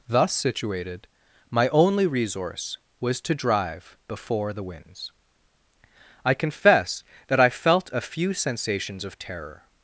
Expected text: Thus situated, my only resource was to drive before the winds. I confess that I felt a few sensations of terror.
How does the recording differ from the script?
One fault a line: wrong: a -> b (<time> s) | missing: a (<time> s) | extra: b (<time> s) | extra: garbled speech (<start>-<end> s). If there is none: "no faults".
no faults